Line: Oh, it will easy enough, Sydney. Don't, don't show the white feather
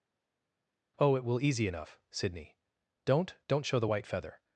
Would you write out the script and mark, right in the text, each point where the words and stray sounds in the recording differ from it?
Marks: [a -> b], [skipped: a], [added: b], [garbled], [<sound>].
Oh, it will easy enough, Sydney. Don't, don't show the white feather